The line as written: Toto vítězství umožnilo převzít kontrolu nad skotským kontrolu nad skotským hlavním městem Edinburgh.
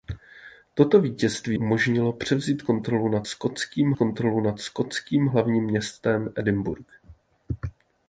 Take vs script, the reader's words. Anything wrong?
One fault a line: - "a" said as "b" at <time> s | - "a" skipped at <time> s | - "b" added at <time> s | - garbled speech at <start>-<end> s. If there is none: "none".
none